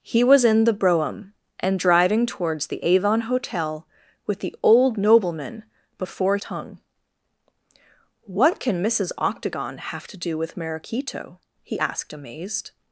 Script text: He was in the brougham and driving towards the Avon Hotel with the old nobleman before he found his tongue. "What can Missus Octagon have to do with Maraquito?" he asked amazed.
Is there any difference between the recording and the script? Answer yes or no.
yes